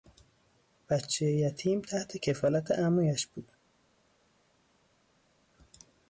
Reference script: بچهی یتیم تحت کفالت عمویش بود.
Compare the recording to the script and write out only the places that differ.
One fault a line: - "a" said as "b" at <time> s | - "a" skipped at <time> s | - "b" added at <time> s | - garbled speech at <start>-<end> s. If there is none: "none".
none